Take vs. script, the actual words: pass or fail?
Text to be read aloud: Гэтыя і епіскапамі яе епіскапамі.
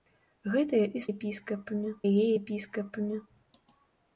pass